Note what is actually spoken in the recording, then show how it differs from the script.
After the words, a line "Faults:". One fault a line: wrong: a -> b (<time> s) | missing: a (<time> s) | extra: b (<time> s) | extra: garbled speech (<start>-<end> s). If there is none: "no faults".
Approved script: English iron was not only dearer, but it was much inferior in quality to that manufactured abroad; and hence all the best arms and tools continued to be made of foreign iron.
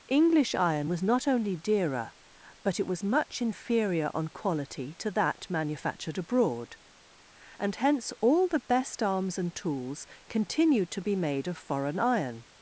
English iron was not only dearer, but it was much inferior on quality to that manufactured abroad; and hence all the best arms and tools continued to be made of foreign iron.
Faults:
wrong: in -> on (4.1 s)